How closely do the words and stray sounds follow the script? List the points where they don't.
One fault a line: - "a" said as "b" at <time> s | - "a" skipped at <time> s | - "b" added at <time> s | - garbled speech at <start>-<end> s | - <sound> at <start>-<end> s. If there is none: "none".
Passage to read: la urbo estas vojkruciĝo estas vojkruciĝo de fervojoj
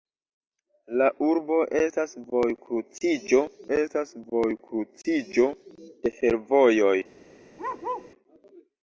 - bark at 7.6-8.1 s